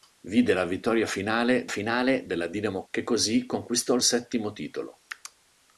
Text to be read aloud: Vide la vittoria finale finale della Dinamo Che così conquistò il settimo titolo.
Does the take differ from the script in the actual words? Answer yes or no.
no